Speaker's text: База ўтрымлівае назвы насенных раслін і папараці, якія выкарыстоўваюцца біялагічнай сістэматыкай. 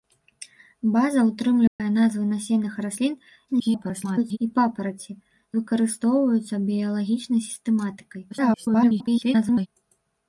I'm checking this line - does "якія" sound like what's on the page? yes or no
no